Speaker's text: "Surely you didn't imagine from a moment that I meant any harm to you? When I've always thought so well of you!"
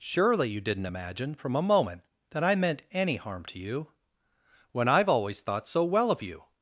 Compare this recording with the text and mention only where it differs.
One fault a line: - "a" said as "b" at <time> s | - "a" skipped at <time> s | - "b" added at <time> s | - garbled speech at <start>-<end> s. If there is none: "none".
none